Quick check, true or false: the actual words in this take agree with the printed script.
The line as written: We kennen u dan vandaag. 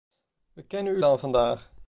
true